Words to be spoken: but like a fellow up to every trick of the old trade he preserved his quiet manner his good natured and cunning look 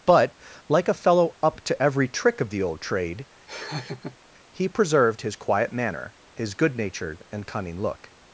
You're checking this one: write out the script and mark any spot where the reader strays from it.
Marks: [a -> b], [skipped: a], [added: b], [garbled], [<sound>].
but like a fellow up to every trick of the old trade [laugh] he preserved his quiet manner his good natured and cunning look